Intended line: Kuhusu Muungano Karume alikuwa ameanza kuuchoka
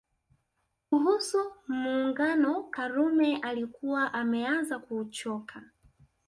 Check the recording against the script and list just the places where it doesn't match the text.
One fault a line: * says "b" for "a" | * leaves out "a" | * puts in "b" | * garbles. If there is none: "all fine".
all fine